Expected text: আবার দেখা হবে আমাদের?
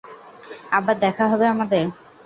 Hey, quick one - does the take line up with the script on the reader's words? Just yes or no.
yes